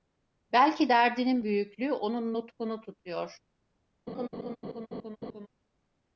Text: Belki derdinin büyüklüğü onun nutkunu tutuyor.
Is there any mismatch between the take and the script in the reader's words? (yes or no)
no